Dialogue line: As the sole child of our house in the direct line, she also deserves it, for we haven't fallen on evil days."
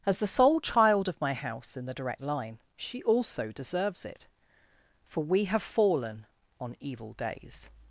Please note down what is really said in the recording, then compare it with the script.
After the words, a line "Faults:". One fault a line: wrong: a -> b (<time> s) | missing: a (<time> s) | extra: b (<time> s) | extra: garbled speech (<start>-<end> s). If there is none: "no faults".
As the sole child of my house in the direct line, she also deserves it, for we have fallen on evil days."
Faults:
wrong: our -> my (1.2 s)
wrong: haven't -> have (5.5 s)